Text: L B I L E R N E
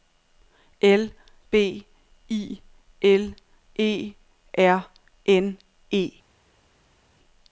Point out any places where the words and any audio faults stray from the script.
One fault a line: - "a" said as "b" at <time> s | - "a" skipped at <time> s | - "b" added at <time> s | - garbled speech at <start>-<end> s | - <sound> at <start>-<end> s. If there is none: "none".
none